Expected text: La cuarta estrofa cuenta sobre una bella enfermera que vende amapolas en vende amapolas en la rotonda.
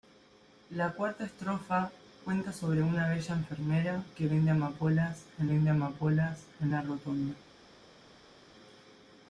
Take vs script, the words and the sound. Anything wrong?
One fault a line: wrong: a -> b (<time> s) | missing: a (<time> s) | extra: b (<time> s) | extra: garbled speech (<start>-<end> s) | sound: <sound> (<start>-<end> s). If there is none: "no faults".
no faults